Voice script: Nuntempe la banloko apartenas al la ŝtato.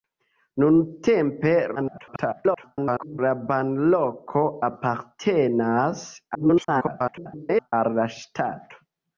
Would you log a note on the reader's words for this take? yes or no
yes